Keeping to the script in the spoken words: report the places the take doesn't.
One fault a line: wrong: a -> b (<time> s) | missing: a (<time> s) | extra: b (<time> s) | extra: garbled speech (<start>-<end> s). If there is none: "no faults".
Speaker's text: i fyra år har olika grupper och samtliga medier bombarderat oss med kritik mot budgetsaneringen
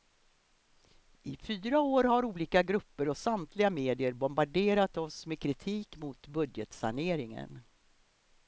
no faults